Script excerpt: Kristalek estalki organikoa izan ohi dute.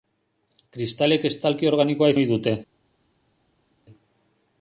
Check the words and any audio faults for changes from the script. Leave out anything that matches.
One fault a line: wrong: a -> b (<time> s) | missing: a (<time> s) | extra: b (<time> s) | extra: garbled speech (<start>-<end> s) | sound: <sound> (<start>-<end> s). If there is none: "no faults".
missing: izan (2.1 s)